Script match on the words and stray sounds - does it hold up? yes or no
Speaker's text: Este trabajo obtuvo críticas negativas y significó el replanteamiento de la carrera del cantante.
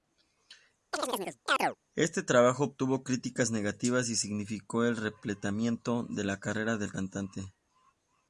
no